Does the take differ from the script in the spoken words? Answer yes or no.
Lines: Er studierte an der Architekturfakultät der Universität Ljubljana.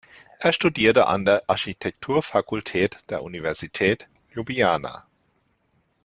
no